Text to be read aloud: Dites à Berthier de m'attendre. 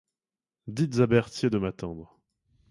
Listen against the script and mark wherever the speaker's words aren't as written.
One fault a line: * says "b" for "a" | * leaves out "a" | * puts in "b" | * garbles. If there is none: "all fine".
all fine